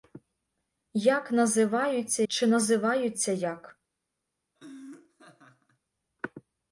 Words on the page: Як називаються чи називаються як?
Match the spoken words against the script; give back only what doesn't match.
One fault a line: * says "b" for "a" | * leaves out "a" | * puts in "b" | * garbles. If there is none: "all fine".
all fine